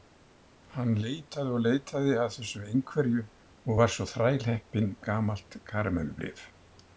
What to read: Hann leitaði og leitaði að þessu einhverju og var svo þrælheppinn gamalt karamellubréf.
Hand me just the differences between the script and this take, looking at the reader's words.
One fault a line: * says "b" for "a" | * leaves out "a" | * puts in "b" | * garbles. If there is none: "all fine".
all fine